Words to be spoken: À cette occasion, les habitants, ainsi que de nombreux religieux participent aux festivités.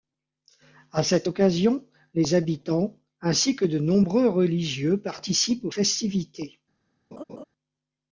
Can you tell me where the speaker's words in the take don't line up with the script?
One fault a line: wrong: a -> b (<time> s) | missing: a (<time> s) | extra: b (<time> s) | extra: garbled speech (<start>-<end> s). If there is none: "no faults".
no faults